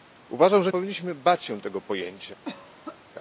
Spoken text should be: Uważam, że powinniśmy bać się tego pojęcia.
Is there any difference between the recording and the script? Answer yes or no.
no